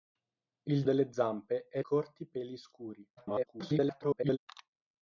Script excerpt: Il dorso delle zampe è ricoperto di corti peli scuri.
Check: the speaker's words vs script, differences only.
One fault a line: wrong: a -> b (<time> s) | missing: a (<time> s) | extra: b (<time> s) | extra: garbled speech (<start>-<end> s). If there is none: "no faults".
missing: dorso (0.8 s)
missing: ricoperto di (1.8 s)
extra: garbled speech (3.2-4.4 s)